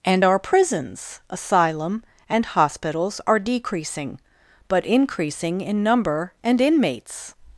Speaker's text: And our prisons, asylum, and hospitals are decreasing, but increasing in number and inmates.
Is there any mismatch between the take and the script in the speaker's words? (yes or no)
no